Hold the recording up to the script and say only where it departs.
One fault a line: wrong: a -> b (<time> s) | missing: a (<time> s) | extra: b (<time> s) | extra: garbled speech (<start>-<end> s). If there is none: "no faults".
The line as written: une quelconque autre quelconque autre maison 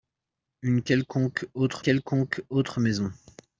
no faults